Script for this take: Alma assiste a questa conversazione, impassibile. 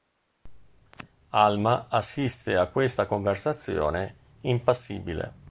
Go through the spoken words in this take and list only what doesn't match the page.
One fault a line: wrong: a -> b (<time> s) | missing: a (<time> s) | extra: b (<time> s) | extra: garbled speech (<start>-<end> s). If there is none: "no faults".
no faults